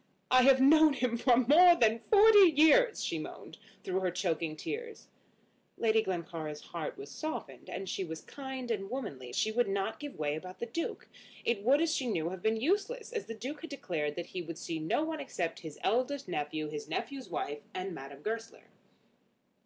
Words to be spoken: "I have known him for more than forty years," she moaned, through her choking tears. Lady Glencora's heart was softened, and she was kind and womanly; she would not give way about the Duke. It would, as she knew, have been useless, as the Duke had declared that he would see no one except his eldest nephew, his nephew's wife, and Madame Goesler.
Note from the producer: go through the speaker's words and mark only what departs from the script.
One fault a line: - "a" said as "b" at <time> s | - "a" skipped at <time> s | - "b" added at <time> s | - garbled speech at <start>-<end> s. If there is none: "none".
none